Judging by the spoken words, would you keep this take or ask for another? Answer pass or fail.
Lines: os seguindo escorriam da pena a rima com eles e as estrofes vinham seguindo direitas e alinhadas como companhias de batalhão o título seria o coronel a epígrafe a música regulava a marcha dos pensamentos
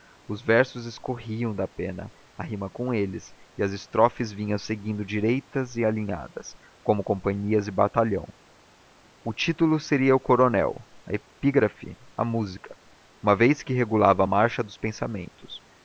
fail